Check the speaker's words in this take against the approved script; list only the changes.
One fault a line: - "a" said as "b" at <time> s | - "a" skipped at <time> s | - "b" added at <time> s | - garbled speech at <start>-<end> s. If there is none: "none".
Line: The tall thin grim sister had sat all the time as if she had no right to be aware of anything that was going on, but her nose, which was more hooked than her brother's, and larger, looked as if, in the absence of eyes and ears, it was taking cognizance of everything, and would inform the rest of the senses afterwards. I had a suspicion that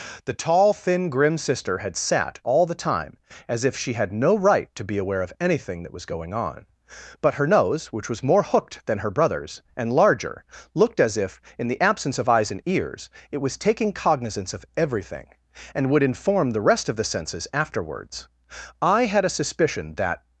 none